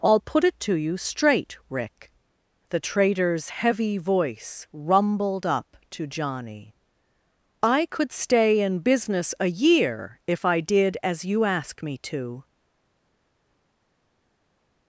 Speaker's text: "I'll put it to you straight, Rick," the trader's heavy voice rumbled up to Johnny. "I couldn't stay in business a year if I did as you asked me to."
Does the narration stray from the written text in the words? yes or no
yes